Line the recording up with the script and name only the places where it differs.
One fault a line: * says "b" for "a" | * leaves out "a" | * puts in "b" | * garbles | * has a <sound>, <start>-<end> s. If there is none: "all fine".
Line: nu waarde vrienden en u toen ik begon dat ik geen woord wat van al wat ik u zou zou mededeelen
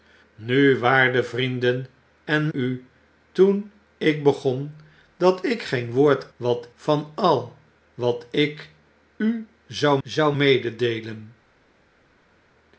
all fine